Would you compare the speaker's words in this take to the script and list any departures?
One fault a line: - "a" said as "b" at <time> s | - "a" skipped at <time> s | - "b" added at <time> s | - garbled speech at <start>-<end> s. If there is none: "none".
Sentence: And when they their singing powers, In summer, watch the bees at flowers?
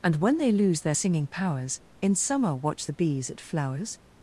- "lose" added at 0.5 s